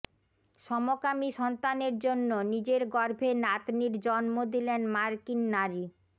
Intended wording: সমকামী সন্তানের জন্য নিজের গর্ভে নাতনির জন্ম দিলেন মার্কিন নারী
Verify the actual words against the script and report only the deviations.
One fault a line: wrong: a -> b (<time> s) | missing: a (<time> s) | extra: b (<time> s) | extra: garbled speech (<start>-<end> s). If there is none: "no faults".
no faults